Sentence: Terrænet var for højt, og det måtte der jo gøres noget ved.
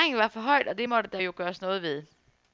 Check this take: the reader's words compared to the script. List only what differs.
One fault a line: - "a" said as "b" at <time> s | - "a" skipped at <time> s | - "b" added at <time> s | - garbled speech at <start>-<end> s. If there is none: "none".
none